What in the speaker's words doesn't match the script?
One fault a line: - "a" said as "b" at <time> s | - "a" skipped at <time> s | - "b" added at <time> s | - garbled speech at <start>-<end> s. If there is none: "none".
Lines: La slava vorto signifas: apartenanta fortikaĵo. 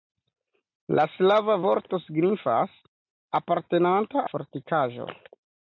none